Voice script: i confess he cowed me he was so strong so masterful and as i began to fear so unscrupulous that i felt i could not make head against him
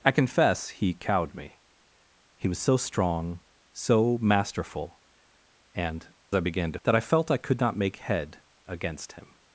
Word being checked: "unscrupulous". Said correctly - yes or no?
no